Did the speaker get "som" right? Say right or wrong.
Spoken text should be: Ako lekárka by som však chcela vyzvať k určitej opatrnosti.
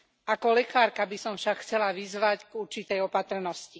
right